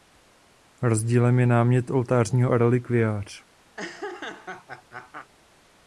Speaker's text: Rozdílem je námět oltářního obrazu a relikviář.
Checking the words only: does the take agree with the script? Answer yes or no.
no